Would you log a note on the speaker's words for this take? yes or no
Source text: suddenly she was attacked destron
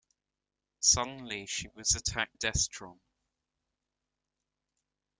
no